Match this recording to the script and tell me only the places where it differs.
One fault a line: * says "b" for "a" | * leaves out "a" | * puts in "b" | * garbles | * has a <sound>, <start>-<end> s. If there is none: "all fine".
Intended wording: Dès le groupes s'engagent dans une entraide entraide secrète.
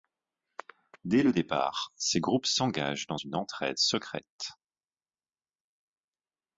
* puts in "départ ces"
* leaves out "entraide"